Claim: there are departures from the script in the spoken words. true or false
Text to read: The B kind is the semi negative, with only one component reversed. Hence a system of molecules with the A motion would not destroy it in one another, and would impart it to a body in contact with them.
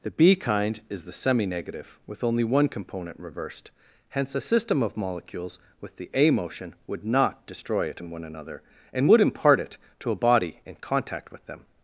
false